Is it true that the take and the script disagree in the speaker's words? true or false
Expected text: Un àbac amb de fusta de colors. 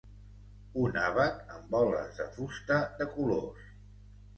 true